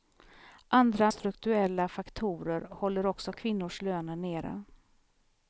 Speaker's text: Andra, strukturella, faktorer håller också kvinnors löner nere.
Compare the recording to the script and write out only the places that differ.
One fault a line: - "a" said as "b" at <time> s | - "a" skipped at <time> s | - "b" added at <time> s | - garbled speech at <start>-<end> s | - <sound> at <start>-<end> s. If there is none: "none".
none